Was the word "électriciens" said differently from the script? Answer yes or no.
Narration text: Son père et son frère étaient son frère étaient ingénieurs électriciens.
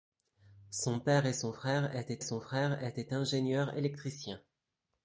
no